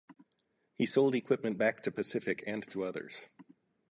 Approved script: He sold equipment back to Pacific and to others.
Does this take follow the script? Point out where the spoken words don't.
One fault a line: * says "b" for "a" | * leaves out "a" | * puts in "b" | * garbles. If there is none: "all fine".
all fine